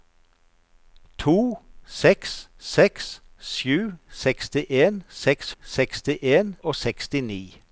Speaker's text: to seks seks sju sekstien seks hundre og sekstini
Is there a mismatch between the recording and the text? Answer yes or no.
yes